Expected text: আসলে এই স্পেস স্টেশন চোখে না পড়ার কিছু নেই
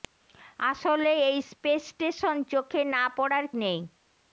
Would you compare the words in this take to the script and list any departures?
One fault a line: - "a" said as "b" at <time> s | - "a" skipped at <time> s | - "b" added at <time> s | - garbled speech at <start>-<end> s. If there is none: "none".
- "কিছু" skipped at 3.4 s